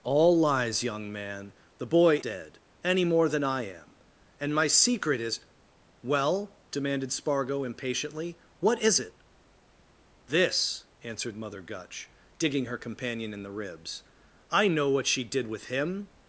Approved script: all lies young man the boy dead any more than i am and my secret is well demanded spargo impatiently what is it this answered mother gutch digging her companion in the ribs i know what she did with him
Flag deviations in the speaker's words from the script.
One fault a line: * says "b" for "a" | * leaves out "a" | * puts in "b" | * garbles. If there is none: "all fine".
all fine